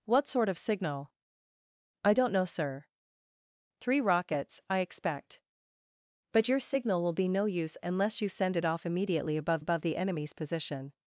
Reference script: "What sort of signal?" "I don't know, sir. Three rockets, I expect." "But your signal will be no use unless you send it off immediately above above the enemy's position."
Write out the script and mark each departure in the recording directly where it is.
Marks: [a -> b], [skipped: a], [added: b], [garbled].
"What sort of signal?" "I don't know, sir. Three rockets, I expect." "But your signal will be no use unless you send it off immediately above above the enemy's position."